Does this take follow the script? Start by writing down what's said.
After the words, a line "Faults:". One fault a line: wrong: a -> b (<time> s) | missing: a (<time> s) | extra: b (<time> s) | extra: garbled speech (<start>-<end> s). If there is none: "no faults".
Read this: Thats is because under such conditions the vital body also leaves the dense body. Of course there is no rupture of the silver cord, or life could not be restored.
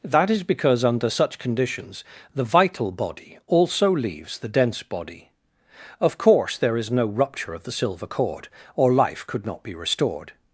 That is because under such conditions the vital body also leaves the dense body. Of course there is no rupture of the silver cord, or life could not be restored.
Faults:
wrong: Thats -> That (0.0 s)